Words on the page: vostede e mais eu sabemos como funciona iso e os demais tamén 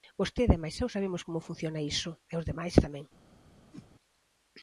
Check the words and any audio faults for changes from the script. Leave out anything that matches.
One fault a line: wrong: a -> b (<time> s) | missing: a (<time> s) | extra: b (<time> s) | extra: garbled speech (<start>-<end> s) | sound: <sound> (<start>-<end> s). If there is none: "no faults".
sound: whoosh (3.7-3.9 s)